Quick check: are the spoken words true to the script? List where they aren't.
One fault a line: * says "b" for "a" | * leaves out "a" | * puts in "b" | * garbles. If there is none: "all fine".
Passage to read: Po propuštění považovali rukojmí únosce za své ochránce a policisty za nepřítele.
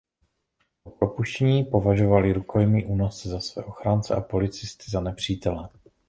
all fine